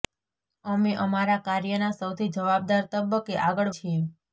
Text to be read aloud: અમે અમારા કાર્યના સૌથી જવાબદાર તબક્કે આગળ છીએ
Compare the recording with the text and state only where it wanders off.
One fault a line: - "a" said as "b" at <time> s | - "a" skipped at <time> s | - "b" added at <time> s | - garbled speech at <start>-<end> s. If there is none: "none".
none